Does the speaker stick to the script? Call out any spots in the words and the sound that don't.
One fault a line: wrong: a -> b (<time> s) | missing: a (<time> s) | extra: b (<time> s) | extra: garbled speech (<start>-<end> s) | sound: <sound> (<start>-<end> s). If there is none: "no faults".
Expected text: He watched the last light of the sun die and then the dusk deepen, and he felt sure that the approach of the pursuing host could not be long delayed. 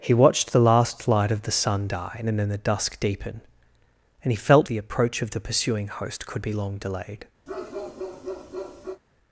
missing: sure that (4.7 s)
missing: not (6.4 s)
sound: bark (7.5-9.0 s)